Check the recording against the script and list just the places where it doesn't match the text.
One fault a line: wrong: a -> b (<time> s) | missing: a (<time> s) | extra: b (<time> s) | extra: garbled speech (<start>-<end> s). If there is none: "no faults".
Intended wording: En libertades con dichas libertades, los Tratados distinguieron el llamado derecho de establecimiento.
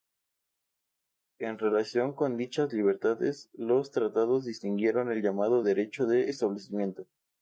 wrong: libertades -> relación (1.6 s)